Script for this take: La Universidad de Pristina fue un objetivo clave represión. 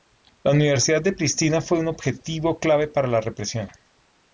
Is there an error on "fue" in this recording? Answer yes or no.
no